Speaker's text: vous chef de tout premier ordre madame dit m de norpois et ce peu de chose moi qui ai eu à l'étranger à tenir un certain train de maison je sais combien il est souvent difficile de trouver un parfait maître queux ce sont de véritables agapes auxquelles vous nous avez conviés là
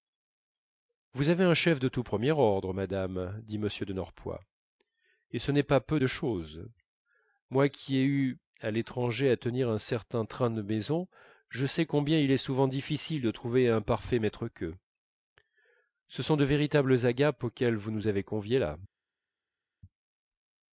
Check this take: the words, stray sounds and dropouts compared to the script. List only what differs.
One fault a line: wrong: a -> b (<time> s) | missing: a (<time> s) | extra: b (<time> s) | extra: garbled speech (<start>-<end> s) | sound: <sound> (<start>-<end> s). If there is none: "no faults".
extra: avez un (1.3 s)
extra: n'est pas (5.5 s)